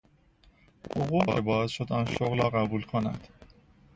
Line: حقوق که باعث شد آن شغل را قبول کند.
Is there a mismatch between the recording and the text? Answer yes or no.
no